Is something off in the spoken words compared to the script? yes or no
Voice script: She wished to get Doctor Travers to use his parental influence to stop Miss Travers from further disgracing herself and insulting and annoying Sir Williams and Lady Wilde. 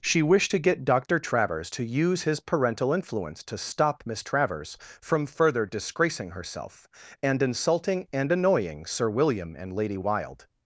yes